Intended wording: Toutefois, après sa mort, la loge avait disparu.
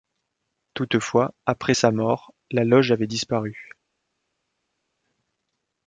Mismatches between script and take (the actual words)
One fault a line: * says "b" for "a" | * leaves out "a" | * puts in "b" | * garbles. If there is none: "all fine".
all fine